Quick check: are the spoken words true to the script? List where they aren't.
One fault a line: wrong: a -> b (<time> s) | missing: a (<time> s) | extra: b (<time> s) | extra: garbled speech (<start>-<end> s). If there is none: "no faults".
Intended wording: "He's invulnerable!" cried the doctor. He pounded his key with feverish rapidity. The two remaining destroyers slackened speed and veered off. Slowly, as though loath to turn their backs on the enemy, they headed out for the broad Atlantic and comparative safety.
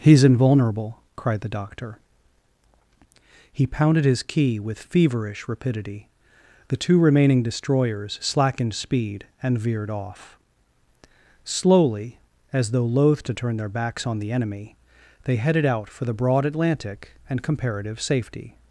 no faults